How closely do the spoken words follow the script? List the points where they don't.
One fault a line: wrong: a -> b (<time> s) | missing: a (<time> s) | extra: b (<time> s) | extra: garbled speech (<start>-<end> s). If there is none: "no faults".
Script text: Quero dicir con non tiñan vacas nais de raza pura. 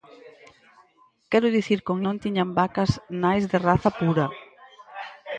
no faults